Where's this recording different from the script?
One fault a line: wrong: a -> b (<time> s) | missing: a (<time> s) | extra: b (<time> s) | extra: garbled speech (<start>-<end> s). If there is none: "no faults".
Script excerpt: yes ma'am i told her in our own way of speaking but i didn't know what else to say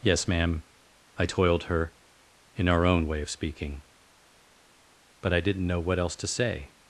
wrong: told -> toiled (1.2 s)